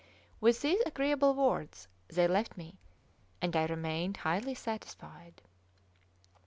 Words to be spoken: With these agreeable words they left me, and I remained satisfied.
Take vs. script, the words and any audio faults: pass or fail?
fail